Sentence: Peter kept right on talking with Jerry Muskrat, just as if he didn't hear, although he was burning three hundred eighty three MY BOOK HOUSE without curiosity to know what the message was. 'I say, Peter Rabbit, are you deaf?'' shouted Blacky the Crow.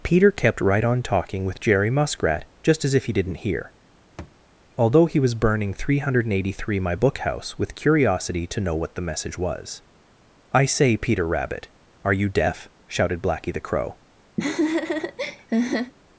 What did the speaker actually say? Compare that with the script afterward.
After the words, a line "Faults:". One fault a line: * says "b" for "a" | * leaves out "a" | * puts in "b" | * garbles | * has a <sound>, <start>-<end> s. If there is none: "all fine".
Peter kept right on talking with Jerry Muskrat, just as if he didn't hear, although he was burning three hundred eighty three MY BOOK HOUSE with curiosity to know what the message was. 'I say, Peter Rabbit, are you deaf?'' shouted Blacky the Crow.
Faults:
* has a thud, 4.2-4.4 s
* says "with" for "without"
* has a laugh, 14.4-15.9 s